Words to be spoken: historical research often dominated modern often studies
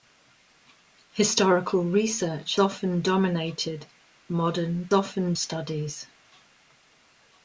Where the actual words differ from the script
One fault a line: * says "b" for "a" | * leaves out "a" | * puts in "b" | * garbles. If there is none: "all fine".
all fine